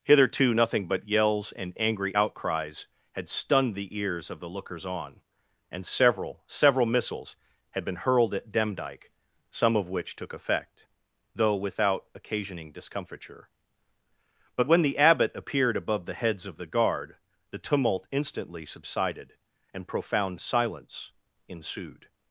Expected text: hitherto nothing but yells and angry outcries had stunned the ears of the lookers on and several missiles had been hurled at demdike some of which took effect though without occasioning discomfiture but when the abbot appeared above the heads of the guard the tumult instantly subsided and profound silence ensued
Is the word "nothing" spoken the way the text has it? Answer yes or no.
yes